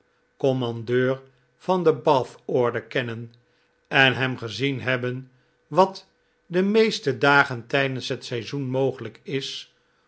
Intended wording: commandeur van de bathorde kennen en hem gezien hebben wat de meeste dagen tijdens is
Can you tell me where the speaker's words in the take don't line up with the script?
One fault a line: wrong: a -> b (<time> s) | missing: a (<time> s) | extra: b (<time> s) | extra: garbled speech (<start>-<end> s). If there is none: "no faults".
extra: het seizoen mogelijk (8.1 s)